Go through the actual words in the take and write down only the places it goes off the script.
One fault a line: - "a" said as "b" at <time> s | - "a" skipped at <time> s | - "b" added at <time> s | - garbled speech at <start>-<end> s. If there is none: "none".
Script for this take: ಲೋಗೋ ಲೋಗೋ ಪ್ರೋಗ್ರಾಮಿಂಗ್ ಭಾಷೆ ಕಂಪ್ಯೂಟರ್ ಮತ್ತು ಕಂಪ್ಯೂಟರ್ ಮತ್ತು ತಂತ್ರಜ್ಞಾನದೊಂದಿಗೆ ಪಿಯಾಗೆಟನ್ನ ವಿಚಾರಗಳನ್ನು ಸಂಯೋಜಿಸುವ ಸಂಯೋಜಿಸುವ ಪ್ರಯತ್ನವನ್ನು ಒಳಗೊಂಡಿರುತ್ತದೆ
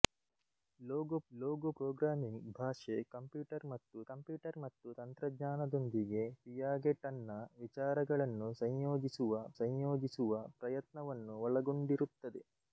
none